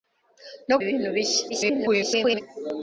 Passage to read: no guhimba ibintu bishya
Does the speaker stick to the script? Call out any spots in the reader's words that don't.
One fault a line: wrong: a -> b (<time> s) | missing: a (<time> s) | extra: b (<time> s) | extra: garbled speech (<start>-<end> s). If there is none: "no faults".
missing: guhimba (0.8 s)
extra: garbled speech (1.5-2.4 s)